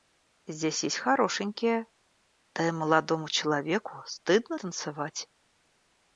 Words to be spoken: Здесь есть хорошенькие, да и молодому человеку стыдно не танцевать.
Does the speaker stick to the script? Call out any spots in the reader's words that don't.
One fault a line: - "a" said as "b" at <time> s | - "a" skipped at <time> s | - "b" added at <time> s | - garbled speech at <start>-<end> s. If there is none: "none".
- "не" skipped at 4.6 s